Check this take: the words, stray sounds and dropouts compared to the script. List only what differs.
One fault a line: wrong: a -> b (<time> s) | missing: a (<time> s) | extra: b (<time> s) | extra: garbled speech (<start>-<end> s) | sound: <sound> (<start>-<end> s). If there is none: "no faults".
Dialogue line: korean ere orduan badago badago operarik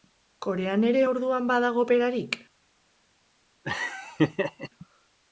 missing: badago (1.8 s)
sound: laugh (3.6-4.7 s)